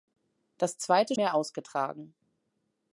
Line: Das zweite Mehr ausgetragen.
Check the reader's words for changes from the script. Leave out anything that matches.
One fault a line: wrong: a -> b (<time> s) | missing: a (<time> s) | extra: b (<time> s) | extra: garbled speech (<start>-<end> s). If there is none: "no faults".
no faults